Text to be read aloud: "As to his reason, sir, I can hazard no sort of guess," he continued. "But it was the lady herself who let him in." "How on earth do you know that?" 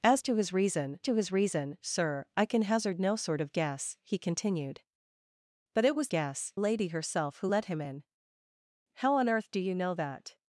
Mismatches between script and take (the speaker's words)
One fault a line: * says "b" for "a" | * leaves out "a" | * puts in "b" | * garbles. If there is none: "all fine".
* puts in "to his reason"
* says "guess" for "the"